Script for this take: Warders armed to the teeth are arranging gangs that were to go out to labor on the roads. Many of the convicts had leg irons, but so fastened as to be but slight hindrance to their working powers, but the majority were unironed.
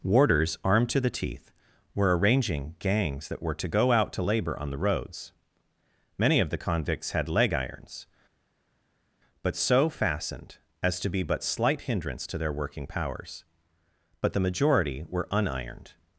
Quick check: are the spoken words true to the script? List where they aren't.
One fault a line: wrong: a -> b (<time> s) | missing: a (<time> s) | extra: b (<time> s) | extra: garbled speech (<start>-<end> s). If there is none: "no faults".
wrong: are -> were (1.9 s)